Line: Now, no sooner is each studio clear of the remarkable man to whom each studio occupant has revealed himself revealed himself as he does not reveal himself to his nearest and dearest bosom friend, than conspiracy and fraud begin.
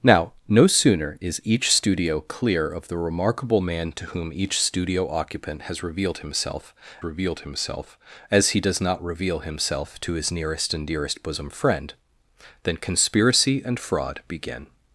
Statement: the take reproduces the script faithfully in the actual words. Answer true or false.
true